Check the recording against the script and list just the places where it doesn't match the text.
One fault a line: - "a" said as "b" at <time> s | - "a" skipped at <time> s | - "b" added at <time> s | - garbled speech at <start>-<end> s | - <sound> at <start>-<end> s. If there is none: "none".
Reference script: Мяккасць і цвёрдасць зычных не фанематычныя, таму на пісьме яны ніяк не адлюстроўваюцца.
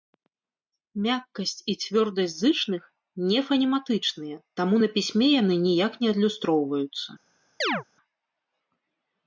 - chirp at 7.6-7.8 s